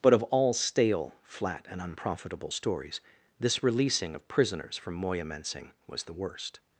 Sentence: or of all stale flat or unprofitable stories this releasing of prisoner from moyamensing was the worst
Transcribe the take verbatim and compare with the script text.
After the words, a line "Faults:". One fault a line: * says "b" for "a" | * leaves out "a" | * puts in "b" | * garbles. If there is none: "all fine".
but of all stale flat and unprofitable stories this releasing of prisoners from moyamensing was the worst
Faults:
* says "but" for "or"
* says "and" for "or"
* says "prisoners" for "prisoner"